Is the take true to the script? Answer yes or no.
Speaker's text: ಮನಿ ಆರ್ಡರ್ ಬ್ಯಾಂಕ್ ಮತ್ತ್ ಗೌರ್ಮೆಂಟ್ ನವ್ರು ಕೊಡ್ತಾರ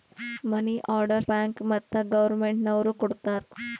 yes